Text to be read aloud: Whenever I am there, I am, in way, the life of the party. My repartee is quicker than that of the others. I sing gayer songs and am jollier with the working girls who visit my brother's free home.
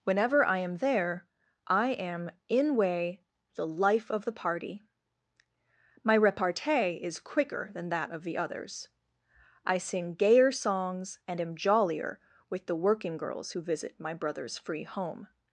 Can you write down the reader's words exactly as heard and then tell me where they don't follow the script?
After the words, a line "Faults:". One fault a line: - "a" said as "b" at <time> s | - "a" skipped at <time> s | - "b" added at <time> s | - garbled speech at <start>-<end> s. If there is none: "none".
Whenever I am there, I am, in way, the life of the party. My repartee is quicker than that of the others. I sing gayer songs and am jollier with the working girls who visit my brother's free home.
Faults:
none